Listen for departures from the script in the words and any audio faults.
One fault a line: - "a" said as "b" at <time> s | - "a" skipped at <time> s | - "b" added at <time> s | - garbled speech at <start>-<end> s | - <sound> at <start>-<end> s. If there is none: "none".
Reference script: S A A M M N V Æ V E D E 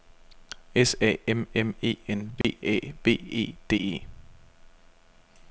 - "A" said as "M" at 1.3 s
- "M" said as "E" at 1.8 s
- dropout at 2.4-2.4 s